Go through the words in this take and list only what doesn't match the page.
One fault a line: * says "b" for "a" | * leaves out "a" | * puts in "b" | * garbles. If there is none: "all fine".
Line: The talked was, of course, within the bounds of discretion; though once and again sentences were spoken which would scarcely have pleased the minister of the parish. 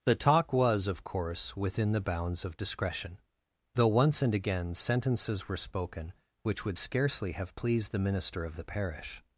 * says "talk" for "talked"